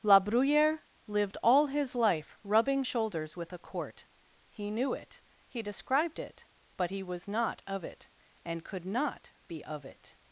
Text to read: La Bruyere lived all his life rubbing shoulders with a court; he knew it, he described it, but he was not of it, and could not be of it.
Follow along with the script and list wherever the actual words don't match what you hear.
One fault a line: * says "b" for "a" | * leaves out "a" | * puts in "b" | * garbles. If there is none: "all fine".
all fine